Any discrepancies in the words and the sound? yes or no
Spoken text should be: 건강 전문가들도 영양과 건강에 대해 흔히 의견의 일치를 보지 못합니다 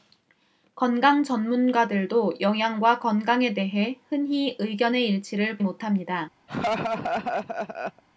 yes